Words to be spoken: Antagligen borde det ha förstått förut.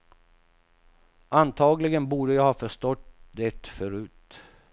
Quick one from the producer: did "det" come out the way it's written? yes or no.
no